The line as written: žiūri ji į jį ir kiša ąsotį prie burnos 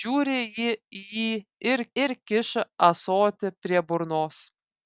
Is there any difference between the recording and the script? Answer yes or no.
yes